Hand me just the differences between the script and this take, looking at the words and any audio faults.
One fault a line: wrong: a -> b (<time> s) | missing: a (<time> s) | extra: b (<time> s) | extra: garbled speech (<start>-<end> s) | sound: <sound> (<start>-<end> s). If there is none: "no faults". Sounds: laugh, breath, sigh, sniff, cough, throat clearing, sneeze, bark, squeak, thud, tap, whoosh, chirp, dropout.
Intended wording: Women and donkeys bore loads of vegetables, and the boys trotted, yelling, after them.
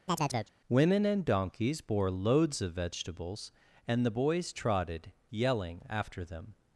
sound: chirp (0.1-0.5 s)